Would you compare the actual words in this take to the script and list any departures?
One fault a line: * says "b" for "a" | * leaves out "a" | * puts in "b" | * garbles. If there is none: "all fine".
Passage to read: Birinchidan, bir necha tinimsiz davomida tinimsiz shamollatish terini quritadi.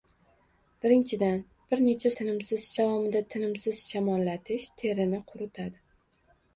all fine